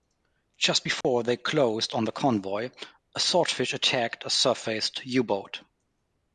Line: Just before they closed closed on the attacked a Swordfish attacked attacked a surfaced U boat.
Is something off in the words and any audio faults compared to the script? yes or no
yes